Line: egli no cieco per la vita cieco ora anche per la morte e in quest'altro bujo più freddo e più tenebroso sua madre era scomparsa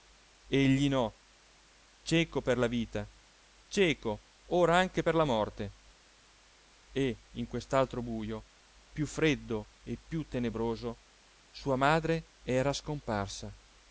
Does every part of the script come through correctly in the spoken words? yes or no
yes